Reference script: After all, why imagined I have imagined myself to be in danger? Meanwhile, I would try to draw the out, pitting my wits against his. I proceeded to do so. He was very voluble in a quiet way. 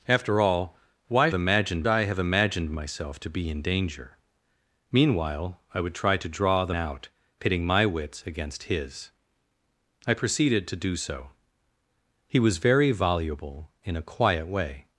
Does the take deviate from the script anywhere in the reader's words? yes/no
no